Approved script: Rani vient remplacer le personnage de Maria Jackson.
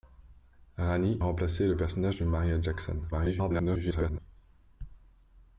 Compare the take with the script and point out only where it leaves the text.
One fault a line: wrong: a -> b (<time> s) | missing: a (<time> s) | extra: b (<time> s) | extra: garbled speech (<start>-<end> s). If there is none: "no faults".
missing: vient (1.2 s)
extra: garbled speech (3.1-4.2 s)